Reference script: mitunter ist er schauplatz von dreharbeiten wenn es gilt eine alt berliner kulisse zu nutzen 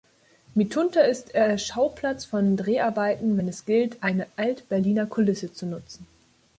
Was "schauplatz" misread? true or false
false